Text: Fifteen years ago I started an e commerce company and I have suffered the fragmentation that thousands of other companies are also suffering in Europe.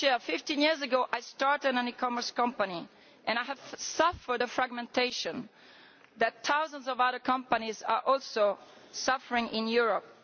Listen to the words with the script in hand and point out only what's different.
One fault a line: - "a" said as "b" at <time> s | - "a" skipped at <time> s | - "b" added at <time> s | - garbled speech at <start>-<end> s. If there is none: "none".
none